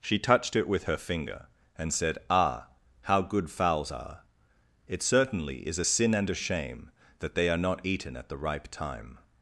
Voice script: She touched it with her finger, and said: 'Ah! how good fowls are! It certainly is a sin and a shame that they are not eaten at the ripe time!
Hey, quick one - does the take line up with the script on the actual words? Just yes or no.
yes